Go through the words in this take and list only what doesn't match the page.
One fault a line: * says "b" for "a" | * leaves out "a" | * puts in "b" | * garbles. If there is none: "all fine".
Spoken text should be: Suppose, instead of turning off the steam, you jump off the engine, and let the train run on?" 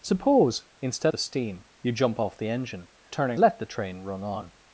* leaves out "of turning off"
* says "turning" for "and"